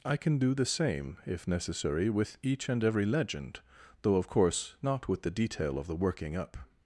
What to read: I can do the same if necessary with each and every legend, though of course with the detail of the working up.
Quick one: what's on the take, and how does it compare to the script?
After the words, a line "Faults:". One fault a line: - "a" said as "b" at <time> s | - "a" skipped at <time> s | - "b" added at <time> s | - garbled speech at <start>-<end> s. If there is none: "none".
I can do the same if necessary with each and every legend, though of course not with the detail of the working up.
Faults:
- "not" added at 4.8 s